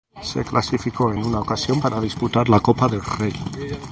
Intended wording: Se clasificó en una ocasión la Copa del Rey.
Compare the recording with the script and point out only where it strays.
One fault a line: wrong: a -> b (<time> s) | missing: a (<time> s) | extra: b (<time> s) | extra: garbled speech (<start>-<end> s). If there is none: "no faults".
extra: para disputar (1.8 s)